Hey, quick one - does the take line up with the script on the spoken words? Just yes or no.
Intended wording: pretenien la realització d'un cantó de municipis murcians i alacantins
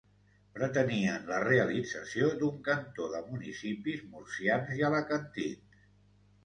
yes